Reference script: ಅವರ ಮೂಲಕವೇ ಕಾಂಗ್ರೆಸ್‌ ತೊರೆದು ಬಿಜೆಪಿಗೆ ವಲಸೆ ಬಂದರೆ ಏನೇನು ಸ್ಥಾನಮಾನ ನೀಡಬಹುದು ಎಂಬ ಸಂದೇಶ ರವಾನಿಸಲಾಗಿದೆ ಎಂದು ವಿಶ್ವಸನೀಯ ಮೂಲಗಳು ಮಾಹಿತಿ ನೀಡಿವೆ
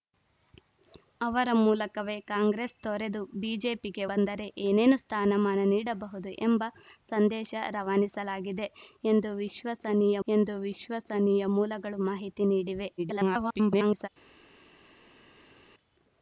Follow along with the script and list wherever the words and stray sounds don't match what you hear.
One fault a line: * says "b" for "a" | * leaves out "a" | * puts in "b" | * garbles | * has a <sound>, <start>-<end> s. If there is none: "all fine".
* leaves out "ವಲಸೆ"
* puts in "ಎಂದು ವಿಶ್ವಸನೀಯ"
* garbles